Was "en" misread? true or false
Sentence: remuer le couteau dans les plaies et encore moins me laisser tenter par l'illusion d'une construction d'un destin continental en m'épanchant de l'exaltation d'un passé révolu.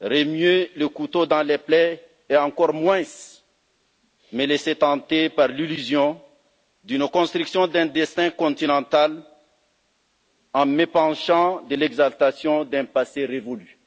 false